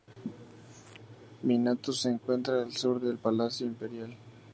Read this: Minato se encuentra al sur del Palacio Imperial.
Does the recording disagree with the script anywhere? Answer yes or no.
no